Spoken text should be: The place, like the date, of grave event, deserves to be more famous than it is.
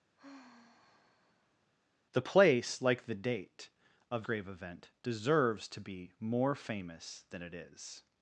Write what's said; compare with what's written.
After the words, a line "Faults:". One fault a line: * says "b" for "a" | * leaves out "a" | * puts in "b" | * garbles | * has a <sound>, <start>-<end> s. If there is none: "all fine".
The place, like the date, of grave event, deserves to be more famous than it is.
Faults:
* has a sigh, 0.2-1.7 s